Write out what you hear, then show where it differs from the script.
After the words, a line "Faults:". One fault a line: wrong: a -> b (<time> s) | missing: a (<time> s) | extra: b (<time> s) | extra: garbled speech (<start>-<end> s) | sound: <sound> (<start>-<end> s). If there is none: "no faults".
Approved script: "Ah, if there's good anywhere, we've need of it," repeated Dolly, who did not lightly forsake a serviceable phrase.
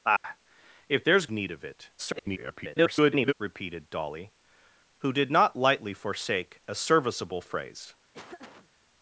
"Ah, if there's need of it," [garbled] repeated Dolly, who did not lightly forsake a serviceable phrase.
Faults:
sound: dropout (0.2-0.2 s)
missing: good anywhere we've (1.3 s)
extra: garbled speech (2.0-3.3 s)
sound: laugh (8.1-8.7 s)